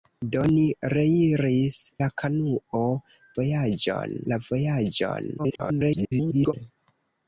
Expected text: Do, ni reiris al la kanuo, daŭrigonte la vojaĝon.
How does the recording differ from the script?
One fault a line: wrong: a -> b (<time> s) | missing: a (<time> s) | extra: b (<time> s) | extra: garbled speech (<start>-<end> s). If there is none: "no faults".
missing: al (1.8 s)
wrong: daŭrigonte -> vojaĝon (3.4 s)
extra: garbled speech (5.4-6.5 s)